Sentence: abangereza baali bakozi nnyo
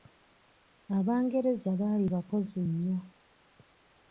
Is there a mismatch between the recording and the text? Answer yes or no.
no